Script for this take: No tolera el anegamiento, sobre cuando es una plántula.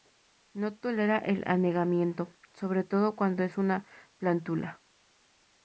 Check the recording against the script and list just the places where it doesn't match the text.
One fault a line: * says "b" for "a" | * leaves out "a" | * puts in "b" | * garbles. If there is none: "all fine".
* puts in "todo"